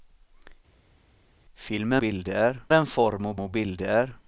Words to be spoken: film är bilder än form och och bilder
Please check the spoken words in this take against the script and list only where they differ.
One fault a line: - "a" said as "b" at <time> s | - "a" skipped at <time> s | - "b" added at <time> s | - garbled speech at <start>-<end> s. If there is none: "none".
none